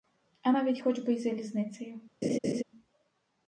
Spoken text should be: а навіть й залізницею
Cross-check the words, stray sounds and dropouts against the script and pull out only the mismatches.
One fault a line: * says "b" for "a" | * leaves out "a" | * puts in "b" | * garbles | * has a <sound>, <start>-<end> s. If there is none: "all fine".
* puts in "хоч би"
* has a laugh, 2.2-2.6 s